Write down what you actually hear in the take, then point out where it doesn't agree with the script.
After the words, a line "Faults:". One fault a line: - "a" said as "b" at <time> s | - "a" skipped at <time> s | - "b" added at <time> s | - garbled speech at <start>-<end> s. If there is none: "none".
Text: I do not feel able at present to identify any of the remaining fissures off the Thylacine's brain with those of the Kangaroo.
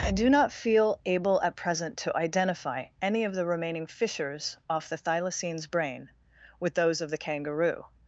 I do not feel able at present to identify any of the remaining fissures off the Thylacine's brain with those of the Kangaroo.
Faults:
none